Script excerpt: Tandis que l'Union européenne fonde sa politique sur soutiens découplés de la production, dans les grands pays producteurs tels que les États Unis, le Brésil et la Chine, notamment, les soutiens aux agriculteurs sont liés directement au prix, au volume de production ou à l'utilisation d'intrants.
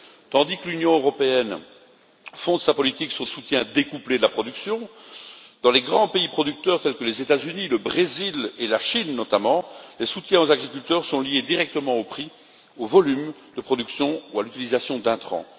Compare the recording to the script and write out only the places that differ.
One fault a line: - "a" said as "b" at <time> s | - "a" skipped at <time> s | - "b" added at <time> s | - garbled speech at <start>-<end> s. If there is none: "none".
none